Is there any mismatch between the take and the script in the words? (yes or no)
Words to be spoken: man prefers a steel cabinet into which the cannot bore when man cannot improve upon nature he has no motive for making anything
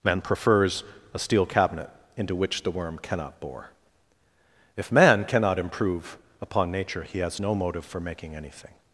yes